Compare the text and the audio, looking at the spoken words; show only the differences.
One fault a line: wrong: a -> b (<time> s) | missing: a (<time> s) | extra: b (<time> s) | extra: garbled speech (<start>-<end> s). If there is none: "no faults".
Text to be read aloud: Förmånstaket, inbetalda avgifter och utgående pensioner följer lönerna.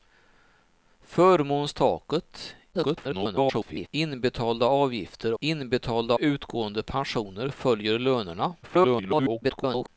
extra: garbled speech (2.7-3.9 s)
wrong: och -> inbetalda (5.4 s)
extra: garbled speech (8.6-9.9 s)